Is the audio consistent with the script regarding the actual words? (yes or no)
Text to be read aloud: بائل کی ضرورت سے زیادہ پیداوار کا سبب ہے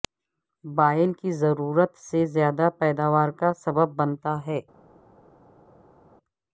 no